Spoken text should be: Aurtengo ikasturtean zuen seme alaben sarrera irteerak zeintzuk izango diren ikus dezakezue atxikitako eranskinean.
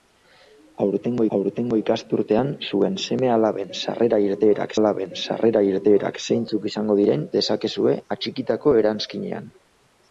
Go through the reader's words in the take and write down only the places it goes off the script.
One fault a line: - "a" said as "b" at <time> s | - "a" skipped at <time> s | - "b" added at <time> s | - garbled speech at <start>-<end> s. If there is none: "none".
- "aurtengo" added at 1.4 s
- "alaben sarrera irteerak" added at 4.8 s
- "ikus" skipped at 7.3 s